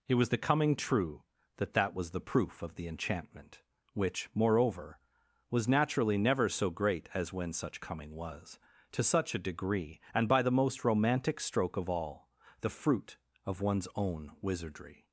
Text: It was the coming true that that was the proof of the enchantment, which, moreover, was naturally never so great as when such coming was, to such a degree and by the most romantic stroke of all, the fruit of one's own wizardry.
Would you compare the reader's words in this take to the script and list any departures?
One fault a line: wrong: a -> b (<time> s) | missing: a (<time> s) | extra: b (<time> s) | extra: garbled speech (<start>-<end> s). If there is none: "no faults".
no faults